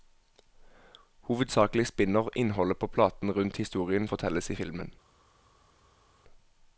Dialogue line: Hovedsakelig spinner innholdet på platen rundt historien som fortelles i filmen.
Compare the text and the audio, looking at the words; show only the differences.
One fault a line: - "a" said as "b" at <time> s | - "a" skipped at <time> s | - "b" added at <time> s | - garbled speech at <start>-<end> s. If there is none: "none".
- "som" skipped at 4.1 s